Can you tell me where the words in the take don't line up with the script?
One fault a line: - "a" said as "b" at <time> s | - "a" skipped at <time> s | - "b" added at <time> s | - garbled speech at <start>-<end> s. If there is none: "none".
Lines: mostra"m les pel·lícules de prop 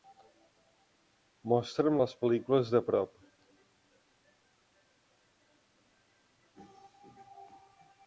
none